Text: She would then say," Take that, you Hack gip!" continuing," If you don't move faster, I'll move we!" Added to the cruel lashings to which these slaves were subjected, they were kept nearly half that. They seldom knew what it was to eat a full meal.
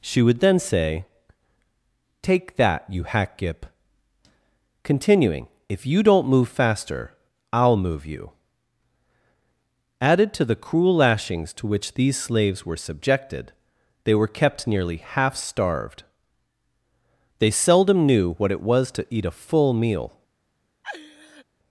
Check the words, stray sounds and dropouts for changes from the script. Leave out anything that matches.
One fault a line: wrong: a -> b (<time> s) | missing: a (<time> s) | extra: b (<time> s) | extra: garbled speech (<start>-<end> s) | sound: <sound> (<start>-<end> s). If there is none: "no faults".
wrong: we -> you (8.0 s)
wrong: that -> starved (15.3 s)
sound: laugh (20.8-21.4 s)